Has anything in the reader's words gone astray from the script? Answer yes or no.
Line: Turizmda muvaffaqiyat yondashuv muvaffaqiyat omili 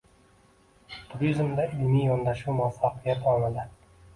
yes